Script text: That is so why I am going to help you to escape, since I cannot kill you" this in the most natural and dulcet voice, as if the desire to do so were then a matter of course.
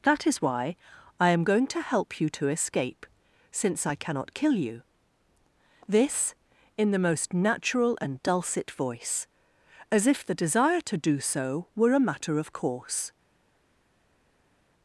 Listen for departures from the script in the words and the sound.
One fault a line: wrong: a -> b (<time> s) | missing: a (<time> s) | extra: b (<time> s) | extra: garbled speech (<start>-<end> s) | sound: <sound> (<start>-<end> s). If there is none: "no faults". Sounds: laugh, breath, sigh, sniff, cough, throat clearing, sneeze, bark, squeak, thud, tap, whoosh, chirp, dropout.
missing: so (0.4 s)
missing: then (11.9 s)